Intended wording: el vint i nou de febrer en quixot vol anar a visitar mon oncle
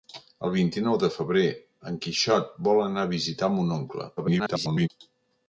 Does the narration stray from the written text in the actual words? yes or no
yes